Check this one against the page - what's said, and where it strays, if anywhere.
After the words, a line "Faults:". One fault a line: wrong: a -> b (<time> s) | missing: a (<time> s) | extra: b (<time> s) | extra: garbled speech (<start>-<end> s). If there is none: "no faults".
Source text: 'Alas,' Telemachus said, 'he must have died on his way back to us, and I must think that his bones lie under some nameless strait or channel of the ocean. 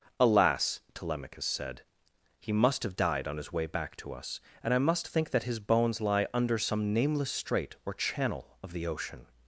'Alas,' Telemachus said, 'he must have died on his way back to us, and I must think that his bones lie under some nameless strait or channel of the ocean.
Faults:
no faults